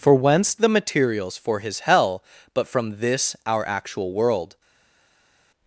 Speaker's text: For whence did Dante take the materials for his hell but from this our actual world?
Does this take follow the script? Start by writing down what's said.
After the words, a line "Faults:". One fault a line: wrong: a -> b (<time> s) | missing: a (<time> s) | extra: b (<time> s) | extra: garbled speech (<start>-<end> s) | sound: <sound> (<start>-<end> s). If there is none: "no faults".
For whence the materials for his hell but from this our actual world?
Faults:
missing: did Dante take (0.6 s)